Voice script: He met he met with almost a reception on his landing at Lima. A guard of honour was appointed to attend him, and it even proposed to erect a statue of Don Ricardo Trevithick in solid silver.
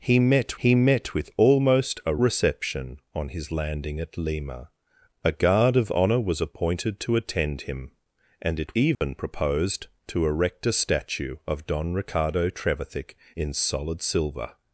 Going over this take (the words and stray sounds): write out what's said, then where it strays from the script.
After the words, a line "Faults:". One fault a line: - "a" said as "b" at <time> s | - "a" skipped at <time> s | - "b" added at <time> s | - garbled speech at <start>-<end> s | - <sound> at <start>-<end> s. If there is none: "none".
He met he met with almost a reception on his landing at Lima. A guard of honour was appointed to attend him, and it even proposed to erect a statue of Don Ricardo Trevithick in solid silver.
Faults:
- dropout at 8.9-9.0 s